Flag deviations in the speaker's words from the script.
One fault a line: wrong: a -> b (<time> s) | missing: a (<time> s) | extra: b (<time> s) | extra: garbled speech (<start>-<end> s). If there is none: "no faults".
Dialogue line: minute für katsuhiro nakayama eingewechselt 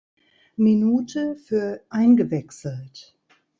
missing: katsuhiro nakayama (1.8 s)